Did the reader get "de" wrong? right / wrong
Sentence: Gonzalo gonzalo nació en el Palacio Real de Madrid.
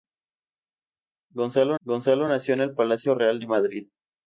right